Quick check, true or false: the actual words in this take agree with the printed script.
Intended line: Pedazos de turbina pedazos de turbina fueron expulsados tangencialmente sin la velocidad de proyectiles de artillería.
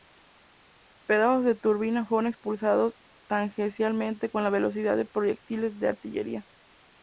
false